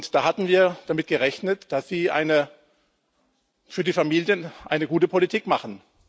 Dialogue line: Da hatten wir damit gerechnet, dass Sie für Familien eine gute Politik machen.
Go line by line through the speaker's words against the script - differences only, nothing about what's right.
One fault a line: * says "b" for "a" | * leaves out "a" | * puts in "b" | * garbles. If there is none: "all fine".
* puts in "die"